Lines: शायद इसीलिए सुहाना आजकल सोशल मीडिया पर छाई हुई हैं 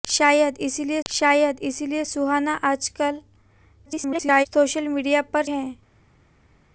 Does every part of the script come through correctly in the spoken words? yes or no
no